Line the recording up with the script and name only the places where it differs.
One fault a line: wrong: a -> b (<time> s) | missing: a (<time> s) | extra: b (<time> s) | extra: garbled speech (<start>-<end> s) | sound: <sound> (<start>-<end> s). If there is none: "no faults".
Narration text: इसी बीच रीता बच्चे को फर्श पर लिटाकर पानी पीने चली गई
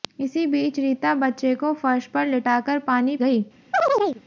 missing: पीने चली (3.2 s)
sound: chirp (3.7-4.2 s)